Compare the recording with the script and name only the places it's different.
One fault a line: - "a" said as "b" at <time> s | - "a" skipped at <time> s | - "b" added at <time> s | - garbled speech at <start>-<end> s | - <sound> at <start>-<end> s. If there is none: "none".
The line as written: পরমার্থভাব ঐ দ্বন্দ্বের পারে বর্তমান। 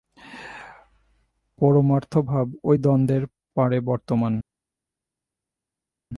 none